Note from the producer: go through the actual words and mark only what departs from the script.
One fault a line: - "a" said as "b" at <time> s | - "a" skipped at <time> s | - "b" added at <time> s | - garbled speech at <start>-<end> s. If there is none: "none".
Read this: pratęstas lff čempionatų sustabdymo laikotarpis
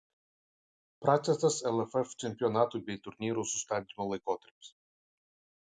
- "bei turnyrų" added at 2.9 s